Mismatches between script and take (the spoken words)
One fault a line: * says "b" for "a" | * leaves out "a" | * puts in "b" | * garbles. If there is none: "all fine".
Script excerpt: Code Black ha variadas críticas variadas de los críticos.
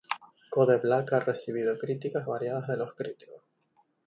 * says "recibido" for "variadas"